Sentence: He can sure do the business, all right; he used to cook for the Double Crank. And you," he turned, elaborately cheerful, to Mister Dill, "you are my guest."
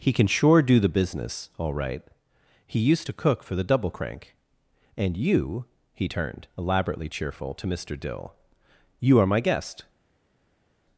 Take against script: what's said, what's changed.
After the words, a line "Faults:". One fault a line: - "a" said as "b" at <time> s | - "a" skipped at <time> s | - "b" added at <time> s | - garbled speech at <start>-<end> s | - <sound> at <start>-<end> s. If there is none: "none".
He can sure do the business, all right; he used to cook for the Double Crank. And you," he turned, elaborately cheerful, to Mister Dill, "you are my guest."
Faults:
none